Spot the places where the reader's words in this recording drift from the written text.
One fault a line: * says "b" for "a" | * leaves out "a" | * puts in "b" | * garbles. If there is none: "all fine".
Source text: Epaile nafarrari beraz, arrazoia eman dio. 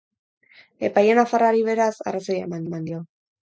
* puts in "eman"